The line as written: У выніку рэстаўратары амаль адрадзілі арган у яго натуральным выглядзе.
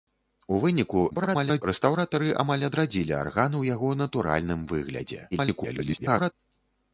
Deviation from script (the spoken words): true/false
true